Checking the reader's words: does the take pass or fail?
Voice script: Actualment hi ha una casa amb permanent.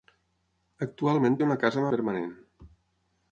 pass